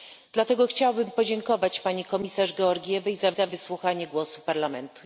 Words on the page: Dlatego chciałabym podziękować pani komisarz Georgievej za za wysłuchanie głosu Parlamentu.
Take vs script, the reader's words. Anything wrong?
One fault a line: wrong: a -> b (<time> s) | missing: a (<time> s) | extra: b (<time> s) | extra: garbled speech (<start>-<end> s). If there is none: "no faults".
no faults